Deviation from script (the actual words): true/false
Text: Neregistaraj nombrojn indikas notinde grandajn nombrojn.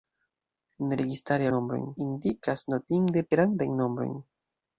false